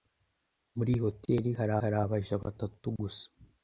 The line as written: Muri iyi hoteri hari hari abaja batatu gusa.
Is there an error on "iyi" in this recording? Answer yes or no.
no